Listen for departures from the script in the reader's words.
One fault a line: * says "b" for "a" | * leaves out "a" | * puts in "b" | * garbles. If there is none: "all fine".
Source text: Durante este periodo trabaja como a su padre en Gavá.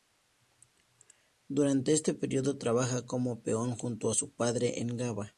* puts in "peón junto"